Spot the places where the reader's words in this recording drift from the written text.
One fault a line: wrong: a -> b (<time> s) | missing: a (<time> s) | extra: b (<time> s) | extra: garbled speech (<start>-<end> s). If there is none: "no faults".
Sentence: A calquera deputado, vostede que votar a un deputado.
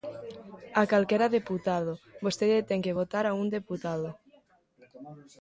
extra: ten (2.7 s)